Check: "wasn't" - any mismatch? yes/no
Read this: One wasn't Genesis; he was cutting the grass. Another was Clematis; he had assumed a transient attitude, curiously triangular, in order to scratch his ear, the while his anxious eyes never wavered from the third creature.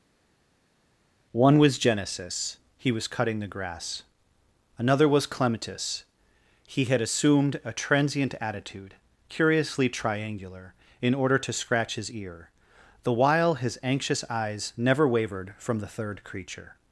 yes